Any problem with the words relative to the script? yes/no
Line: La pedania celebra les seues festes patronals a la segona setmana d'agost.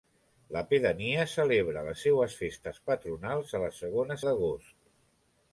yes